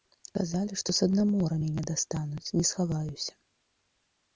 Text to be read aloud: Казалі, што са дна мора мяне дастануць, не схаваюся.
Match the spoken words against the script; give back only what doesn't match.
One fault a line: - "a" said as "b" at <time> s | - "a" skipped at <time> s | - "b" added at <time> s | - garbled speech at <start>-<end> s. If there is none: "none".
none